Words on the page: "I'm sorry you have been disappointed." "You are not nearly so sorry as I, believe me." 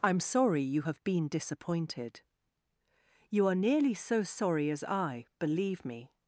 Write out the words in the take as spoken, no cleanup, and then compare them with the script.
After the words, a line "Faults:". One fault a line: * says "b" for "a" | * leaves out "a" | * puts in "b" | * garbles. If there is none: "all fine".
"I'm sorry you have been disappointed." "You are nearly so sorry as I, believe me."
Faults:
* leaves out "not"